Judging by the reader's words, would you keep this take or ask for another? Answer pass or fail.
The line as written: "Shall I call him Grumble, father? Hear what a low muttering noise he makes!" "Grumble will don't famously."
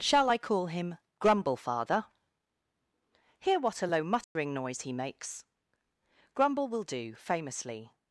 fail